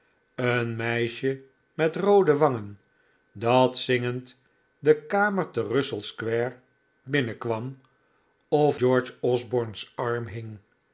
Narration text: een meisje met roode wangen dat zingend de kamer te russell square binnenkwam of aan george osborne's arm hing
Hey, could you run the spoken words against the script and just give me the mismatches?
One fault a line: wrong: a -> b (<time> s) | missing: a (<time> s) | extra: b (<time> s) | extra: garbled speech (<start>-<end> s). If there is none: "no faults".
missing: aan (8.8 s)